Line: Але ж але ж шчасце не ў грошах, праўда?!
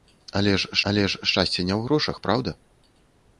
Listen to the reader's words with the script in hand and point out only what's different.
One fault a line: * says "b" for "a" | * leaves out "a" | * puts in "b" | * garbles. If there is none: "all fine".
all fine